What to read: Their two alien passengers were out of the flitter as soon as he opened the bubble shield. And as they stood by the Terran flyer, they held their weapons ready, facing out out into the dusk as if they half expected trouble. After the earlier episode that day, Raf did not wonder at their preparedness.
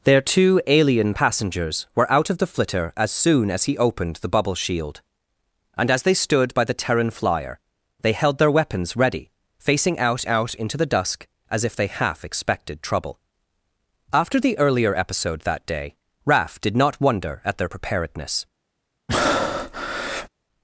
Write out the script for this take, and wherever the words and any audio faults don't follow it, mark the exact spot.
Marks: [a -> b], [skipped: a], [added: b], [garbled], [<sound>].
Their two alien passengers were out of the flitter as soon as he opened the bubble shield. And as they stood by the Terran flyer, they held their weapons ready, facing out out into the dusk as if they half expected trouble. After the earlier episode that day, Raf did not wonder at their preparedness. [breath]